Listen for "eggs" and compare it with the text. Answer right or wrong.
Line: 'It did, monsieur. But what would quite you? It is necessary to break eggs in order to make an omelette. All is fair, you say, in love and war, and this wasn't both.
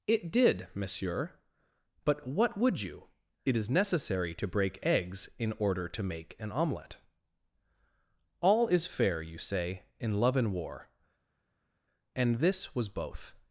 right